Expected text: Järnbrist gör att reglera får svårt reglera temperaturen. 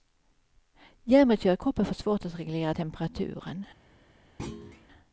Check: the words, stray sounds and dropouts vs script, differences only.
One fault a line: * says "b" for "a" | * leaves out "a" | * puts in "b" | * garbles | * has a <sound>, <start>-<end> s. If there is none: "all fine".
* says "kroppen" for "reglera"
* puts in "att"
* has a thud, 4.4-4.9 s